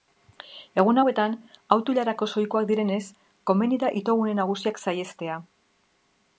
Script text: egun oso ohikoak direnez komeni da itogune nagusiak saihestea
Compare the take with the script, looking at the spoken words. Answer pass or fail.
fail